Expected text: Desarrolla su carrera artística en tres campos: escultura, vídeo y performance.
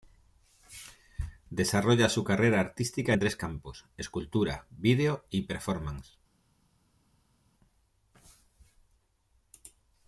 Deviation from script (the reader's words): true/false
false